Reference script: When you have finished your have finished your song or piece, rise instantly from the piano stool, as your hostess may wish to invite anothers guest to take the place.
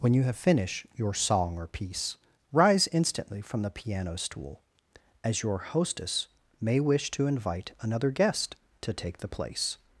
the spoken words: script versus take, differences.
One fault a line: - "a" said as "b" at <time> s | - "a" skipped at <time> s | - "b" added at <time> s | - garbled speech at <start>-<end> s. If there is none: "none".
- "have finished your" skipped at 1.1 s
- "anothers" said as "another" at 7.8 s